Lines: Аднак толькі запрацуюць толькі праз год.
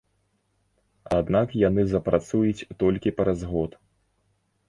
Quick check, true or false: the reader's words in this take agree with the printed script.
false